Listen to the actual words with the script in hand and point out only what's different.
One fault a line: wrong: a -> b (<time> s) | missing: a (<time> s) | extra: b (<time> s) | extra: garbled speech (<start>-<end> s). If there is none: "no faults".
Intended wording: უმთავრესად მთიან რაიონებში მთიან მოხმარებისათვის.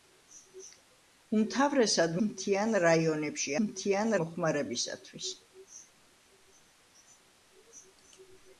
no faults